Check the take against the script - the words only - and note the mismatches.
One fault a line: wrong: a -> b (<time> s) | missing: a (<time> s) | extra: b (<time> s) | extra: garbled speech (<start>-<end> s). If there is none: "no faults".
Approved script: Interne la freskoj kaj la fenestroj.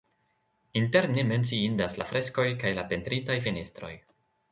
extra: menciindas (1.3 s)
extra: pentritaj (3.0 s)